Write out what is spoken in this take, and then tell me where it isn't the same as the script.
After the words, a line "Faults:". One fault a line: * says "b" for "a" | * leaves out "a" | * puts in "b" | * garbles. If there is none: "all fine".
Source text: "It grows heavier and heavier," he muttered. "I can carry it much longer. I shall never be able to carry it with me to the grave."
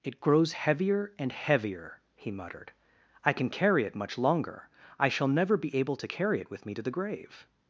"It grows heavier and heavier," he muttered. "I can carry it much longer. I shall never be able to carry it with me to the grave."
Faults:
all fine